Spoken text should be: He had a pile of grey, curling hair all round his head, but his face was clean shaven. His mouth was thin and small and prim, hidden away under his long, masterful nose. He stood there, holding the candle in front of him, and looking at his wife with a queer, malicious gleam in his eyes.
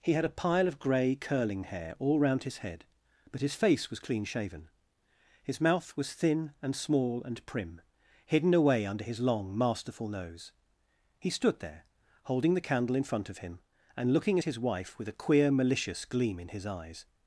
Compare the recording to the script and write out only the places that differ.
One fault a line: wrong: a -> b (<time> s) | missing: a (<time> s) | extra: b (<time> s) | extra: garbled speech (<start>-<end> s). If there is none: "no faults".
no faults